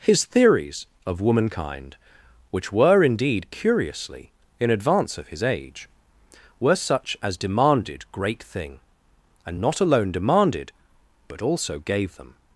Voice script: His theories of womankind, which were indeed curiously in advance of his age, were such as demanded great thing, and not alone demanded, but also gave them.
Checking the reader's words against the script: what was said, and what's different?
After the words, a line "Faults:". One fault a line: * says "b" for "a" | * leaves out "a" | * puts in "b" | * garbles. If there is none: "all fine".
His theories of womankind, which were indeed curiously in advance of his age, were such as demanded great thing, and not alone demanded, but also gave them.
Faults:
all fine